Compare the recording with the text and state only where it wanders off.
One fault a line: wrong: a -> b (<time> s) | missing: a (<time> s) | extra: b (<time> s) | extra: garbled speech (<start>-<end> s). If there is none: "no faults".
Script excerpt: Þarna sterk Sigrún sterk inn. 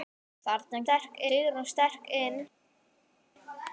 no faults